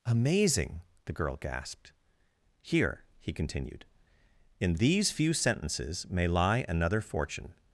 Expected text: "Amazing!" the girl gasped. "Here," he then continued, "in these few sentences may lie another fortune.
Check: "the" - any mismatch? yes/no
no